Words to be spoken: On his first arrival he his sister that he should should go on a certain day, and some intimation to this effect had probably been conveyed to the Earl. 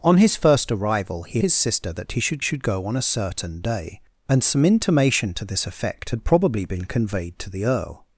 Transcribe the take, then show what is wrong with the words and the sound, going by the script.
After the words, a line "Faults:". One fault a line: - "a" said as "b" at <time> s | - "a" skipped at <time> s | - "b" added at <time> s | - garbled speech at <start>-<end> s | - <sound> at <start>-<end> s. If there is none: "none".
On his first arrival he his sister that he should should go on a certain day, and some intimation to this effect had probably been conveyed to the Earl.
Faults:
none